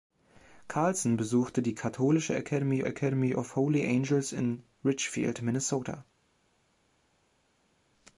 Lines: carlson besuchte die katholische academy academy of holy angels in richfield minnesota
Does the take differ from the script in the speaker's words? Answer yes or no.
no